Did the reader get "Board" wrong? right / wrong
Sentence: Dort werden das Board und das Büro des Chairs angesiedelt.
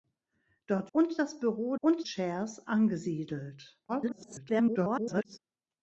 wrong